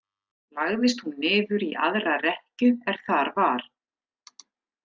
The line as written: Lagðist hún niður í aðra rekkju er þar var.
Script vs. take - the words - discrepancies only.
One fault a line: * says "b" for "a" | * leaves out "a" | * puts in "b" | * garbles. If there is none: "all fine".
all fine